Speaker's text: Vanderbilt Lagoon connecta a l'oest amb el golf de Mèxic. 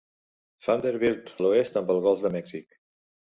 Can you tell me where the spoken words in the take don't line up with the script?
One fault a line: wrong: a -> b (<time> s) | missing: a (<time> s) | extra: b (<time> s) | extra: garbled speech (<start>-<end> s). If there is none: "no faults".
missing: Lagoon connecta (1.3 s)